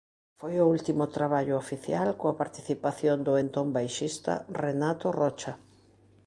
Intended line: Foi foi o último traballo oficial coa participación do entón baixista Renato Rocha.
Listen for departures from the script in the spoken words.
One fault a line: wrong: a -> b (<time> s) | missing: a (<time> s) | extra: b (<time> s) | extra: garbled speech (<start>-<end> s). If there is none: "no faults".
missing: foi (0.5 s)